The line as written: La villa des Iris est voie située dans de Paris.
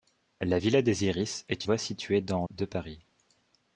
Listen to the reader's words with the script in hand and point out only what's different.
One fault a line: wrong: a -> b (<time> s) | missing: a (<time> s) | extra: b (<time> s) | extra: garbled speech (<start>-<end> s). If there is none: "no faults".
no faults